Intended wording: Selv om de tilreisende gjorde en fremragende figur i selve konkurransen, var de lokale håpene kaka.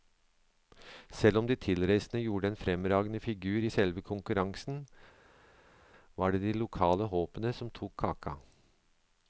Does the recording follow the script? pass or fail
fail